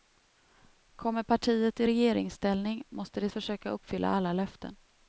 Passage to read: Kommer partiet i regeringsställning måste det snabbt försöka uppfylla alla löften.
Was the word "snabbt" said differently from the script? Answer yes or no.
yes